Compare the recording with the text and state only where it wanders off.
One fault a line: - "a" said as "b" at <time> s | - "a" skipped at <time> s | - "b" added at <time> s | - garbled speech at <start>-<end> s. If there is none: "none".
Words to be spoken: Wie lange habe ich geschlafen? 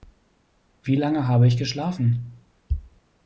none